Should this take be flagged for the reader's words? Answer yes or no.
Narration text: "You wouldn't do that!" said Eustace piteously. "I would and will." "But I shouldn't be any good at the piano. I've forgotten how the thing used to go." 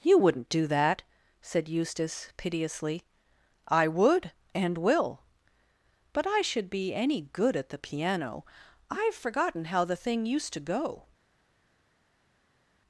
yes